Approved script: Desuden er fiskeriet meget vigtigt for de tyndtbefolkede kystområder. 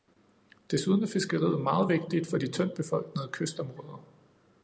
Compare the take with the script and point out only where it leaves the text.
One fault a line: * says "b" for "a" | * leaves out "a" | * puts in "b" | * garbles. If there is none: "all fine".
all fine